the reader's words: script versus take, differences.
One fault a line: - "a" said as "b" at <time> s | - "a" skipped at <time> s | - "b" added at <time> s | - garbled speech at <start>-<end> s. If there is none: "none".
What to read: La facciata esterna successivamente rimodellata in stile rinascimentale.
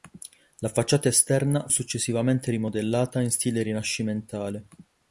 none